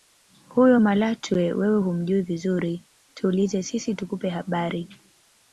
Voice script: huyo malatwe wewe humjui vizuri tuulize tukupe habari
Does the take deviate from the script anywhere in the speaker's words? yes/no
yes